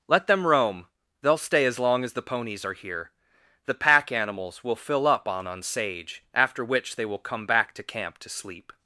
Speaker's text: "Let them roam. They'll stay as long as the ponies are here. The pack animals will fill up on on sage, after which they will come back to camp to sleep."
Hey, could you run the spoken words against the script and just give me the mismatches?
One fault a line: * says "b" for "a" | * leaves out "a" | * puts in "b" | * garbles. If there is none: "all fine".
all fine